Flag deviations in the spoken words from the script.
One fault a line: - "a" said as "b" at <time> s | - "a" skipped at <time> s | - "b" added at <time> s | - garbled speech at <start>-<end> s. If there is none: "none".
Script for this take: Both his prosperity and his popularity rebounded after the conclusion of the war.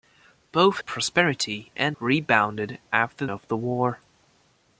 - "his" skipped at 0.8 s
- "his popularity" skipped at 2.0 s
- "the conclusion" skipped at 3.3 s